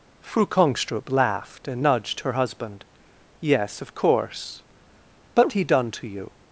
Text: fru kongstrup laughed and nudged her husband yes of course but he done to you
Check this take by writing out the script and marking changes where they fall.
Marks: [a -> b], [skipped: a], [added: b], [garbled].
fru kongstrup laughed and nudged her husband yes of course but he done to you